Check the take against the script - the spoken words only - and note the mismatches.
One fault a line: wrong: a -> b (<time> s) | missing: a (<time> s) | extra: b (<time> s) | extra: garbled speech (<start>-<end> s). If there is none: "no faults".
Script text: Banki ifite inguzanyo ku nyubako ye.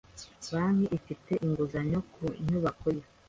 no faults